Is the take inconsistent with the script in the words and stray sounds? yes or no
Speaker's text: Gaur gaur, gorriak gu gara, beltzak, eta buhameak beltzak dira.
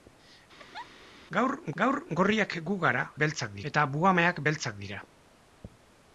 yes